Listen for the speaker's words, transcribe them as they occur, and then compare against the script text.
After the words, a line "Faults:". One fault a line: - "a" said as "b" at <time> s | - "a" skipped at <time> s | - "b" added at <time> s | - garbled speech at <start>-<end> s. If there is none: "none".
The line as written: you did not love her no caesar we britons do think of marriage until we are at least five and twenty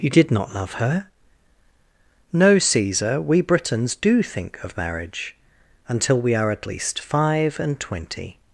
you did not love her no caesar we britons do think of marriage until we are at least five and twenty
Faults:
none